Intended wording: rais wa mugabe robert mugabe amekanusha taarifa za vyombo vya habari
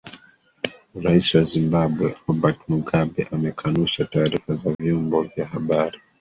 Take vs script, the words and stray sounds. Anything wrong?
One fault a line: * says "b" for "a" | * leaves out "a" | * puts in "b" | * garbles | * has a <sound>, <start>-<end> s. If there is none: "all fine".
* says "zimbabwe" for "mugabe"
* has a dropout, 4.7-4.8 s